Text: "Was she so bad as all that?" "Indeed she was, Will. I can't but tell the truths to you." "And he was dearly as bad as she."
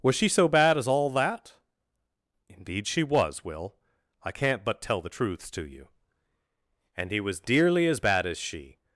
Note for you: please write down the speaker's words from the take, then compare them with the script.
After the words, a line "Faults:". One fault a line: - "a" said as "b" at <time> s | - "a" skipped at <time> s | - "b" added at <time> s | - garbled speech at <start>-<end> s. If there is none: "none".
"Was she so bad as all that?" "Indeed she was, Will. I can't but tell the truths to you." "And he was dearly as bad as she."
Faults:
none